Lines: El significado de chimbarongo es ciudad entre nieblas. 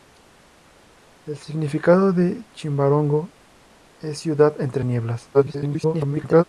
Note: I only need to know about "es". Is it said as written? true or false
true